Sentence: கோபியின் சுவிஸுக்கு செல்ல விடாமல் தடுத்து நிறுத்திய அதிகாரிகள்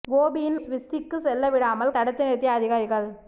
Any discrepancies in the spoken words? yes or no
no